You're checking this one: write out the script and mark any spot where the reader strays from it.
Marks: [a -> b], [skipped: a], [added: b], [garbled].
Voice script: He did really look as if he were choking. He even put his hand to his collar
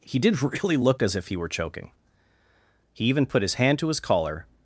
He did really look as if he were choking. He even put his hand to his collar